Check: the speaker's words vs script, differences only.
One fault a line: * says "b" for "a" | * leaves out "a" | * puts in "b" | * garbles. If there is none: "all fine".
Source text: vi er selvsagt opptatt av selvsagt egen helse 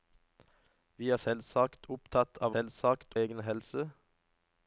all fine